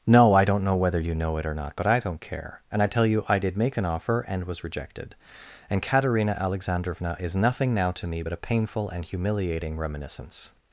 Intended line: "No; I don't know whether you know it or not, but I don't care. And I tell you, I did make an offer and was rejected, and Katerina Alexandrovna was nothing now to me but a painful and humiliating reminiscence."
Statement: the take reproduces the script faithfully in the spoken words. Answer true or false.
false